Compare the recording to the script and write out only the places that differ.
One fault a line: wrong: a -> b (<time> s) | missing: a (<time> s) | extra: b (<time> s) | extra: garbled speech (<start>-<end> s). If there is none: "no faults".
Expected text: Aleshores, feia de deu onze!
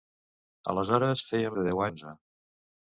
no faults